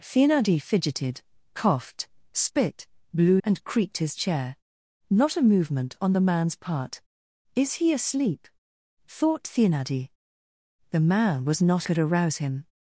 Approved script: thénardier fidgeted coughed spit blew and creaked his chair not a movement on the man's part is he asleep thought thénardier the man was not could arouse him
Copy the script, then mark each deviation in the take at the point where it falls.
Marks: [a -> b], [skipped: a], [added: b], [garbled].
thénardier fidgeted coughed spit blew and creaked his chair not a movement on the man's part is he asleep thought thénardier the man was not could arouse him